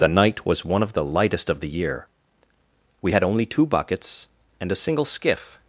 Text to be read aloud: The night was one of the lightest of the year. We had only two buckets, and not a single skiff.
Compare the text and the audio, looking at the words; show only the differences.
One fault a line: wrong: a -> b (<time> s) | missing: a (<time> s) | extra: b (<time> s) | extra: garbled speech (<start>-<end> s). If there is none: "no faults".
missing: not (4.7 s)